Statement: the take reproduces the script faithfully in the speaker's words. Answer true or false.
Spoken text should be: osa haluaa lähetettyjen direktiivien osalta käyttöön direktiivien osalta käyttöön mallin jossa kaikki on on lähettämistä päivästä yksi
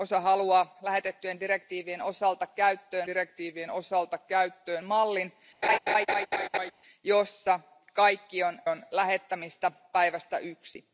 true